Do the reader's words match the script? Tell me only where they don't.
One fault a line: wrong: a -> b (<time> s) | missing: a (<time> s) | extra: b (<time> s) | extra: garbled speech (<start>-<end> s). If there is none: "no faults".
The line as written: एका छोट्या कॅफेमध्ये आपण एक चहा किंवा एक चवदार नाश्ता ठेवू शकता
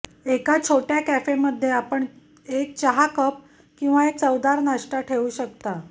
extra: कप (3.1 s)